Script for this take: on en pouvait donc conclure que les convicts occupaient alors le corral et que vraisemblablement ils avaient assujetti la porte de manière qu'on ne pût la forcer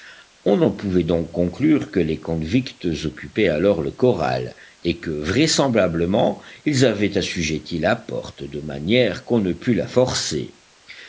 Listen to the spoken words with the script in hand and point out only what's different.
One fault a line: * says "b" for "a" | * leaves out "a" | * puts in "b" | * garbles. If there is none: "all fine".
all fine